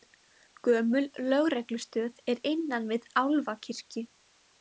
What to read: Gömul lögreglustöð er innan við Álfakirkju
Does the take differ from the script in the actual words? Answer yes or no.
no